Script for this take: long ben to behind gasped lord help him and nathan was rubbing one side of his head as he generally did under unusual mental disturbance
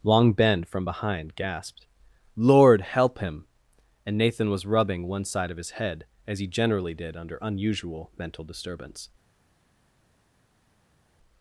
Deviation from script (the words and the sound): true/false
true